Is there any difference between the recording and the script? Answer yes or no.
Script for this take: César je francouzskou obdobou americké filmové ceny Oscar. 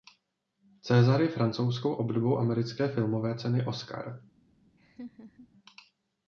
no